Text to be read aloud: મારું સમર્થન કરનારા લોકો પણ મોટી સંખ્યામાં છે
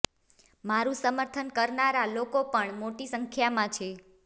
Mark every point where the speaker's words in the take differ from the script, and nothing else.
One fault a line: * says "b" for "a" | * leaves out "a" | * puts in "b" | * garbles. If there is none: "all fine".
all fine